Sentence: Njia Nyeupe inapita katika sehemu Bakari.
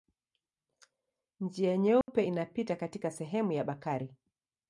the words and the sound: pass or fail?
fail